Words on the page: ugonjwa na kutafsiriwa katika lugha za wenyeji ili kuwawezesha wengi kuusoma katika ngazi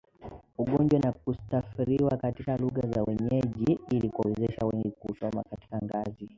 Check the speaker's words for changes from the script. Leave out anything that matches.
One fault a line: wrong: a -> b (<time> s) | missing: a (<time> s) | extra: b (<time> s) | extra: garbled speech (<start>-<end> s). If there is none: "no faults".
no faults